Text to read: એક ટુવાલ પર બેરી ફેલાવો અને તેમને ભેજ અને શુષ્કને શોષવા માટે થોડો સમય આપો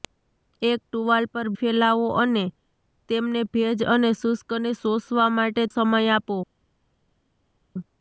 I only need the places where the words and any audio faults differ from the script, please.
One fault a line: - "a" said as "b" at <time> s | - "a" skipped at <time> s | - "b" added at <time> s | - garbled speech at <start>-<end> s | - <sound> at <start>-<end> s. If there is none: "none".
- "બેરી" skipped at 1.5 s
- "થોડો" skipped at 5.6 s